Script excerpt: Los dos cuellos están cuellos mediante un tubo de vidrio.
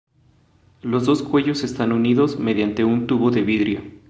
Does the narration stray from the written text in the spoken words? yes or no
yes